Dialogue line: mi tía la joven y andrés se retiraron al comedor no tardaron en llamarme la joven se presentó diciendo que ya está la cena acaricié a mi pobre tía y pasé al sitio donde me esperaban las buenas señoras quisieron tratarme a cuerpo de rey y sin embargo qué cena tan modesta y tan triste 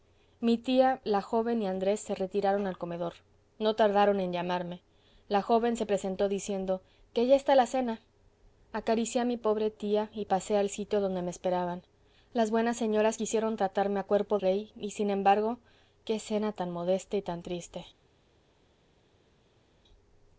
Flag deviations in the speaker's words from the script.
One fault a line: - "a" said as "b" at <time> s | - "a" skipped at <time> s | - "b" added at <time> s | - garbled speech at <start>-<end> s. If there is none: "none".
- "de" skipped at 14.4 s